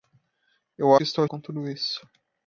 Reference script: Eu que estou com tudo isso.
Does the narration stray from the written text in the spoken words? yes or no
no